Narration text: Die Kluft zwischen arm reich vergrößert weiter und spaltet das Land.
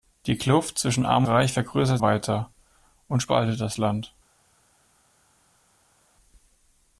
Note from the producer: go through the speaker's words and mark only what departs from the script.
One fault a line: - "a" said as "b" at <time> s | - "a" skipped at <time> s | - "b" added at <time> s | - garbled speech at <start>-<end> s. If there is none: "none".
none